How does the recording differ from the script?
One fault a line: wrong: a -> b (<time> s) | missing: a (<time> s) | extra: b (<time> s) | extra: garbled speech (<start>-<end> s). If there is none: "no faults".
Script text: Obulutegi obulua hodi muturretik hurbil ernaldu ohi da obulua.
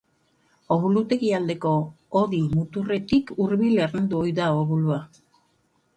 wrong: obulua -> aldeko (1.4 s)